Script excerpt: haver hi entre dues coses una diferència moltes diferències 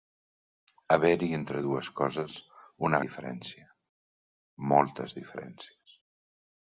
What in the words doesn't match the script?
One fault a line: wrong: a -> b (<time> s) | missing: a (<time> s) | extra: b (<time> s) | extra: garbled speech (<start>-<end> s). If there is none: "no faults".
no faults